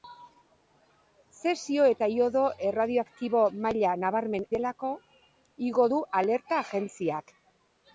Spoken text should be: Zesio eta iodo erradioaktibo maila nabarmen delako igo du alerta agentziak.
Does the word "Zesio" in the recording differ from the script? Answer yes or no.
no